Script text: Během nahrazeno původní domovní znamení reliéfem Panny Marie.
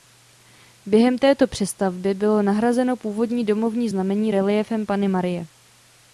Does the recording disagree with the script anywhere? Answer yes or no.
yes